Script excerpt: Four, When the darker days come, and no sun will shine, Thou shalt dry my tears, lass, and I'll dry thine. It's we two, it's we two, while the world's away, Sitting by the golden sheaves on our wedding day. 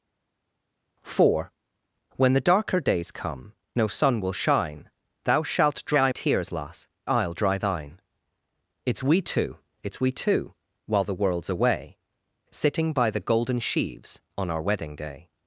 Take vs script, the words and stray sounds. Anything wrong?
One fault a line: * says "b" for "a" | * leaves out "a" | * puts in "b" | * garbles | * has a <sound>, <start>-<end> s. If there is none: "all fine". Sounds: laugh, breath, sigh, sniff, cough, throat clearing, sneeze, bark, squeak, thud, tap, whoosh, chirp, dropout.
* leaves out "and"
* leaves out "my"
* leaves out "and"